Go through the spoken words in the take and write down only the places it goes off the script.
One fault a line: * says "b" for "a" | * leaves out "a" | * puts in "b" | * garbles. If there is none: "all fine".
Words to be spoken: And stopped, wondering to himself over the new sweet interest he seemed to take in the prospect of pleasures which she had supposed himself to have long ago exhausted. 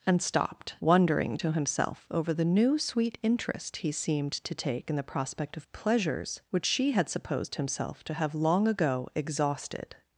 all fine